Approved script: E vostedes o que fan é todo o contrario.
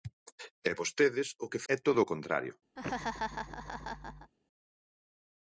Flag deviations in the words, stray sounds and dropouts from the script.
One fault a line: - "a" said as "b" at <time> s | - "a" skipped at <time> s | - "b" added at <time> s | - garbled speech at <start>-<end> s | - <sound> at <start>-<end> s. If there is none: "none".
- "fan" skipped at 1.6 s
- laugh at 2.8-4.3 s